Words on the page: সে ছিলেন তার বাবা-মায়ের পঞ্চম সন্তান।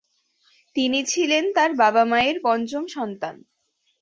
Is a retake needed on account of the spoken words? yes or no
yes